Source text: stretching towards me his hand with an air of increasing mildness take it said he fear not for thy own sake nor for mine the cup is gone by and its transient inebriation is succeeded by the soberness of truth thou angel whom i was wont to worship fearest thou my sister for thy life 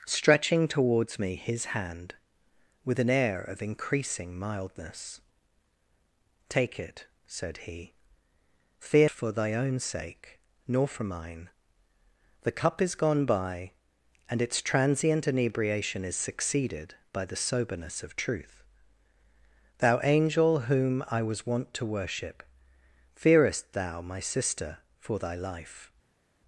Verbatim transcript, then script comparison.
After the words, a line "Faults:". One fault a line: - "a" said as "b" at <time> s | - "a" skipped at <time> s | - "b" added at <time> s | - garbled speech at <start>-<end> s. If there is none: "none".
stretching towards me his hand with an air of increasing mildness take it said he fear for thy own sake nor for mine the cup is gone by and its transient inebriation is succeeded by the soberness of truth thou angel whom i was wont to worship fearest thou my sister for thy life
Faults:
- "not" skipped at 9.1 s